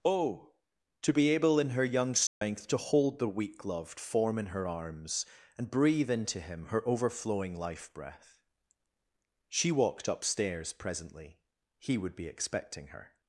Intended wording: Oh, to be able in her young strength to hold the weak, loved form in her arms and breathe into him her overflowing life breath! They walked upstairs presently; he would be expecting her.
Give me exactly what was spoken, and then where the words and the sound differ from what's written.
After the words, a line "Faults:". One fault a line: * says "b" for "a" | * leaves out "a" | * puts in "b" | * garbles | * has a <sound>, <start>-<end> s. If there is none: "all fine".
Oh, to be able in her young strength to hold the weak, loved form in her arms and breathe into him her overflowing life breath! She walked upstairs presently; he would be expecting her.
Faults:
* has a dropout, 2.3-2.4 s
* says "She" for "They"